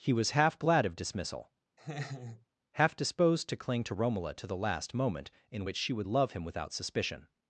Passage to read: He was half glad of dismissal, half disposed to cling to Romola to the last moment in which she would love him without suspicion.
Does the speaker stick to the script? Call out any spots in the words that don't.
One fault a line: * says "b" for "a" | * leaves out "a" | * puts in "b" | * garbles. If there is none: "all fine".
all fine